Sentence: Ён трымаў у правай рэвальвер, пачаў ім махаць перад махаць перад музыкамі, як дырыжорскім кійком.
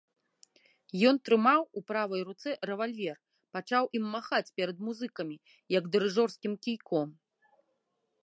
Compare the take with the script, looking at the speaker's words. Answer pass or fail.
fail